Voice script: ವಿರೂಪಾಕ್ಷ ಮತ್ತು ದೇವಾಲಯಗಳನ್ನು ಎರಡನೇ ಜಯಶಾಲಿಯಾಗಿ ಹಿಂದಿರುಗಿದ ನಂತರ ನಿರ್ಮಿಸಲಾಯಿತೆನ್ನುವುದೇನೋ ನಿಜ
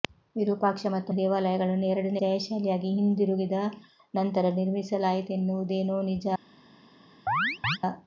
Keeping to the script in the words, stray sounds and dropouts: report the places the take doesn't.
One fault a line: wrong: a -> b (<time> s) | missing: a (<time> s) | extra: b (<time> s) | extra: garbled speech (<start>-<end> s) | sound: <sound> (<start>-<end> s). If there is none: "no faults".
sound: chirp (7.3-7.8 s)